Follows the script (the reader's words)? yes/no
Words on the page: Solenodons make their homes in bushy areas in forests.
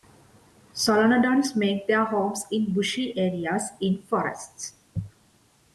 yes